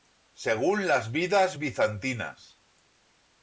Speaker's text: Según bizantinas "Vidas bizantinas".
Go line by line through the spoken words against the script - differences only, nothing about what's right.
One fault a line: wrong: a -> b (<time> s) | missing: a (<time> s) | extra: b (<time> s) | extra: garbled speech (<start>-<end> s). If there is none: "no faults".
wrong: bizantinas -> las (0.9 s)